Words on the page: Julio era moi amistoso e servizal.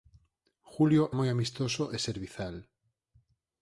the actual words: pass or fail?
fail